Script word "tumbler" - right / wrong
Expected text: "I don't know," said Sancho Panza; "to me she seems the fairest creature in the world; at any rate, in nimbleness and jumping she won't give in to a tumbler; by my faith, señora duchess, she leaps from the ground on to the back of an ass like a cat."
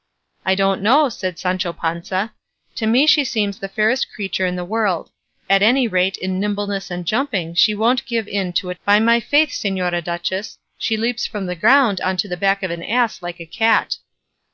wrong